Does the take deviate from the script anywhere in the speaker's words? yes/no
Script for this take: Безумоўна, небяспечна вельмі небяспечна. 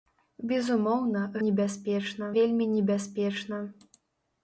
no